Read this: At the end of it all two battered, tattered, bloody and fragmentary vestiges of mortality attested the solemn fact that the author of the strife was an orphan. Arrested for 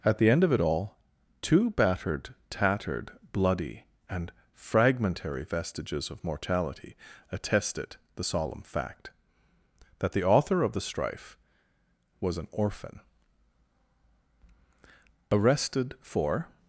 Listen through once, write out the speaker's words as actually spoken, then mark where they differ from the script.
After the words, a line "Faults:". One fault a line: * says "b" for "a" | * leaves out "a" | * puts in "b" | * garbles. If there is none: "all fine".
At the end of it all two battered, tattered, bloody and fragmentary vestiges of mortality attested the solemn fact that the author of the strife was an orphan. Arrested for
Faults:
all fine